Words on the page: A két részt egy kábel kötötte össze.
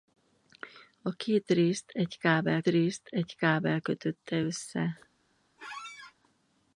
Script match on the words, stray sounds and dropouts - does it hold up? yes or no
no